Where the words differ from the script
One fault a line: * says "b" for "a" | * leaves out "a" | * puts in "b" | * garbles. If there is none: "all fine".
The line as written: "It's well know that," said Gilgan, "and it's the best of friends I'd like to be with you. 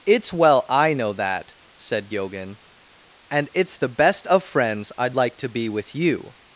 * puts in "I"